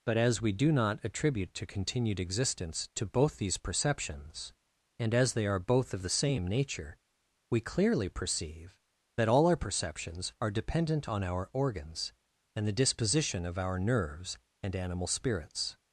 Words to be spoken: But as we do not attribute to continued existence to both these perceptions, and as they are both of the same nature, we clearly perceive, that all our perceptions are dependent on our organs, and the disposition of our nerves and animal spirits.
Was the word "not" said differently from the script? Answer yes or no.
no